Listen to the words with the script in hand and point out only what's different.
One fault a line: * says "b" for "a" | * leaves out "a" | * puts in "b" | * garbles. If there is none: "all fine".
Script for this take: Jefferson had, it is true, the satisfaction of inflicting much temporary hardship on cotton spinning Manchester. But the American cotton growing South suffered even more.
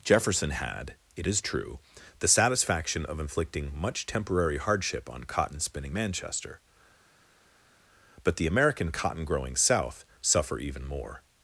* says "suffer" for "suffered"